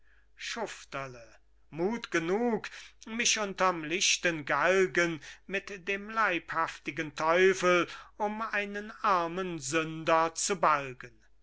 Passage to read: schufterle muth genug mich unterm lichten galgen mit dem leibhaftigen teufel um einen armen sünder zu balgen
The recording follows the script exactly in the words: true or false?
true